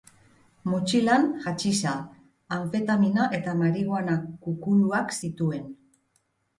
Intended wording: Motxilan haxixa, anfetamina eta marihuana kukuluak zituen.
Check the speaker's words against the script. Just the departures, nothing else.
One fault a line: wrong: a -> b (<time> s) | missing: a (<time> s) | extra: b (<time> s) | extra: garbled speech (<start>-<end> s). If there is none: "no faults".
no faults